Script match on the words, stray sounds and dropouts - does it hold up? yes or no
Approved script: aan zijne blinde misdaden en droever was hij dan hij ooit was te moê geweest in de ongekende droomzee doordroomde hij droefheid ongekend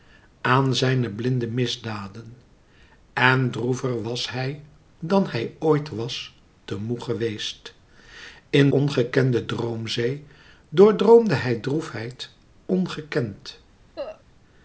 no